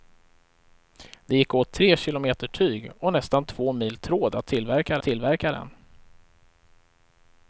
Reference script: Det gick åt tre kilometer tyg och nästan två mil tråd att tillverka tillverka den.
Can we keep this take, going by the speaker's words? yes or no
yes